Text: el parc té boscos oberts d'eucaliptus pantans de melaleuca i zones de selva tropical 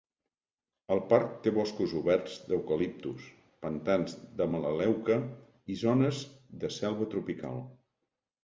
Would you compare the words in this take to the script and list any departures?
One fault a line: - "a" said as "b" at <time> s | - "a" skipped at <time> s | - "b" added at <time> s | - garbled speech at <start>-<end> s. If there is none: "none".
none